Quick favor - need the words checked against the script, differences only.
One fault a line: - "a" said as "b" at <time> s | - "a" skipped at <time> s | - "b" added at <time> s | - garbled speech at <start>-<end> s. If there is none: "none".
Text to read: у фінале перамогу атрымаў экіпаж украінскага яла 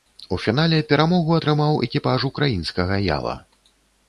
none